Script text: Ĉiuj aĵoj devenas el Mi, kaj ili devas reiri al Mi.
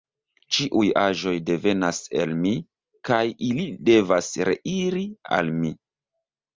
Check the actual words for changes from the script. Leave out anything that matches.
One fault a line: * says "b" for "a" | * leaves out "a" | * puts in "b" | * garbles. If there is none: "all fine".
all fine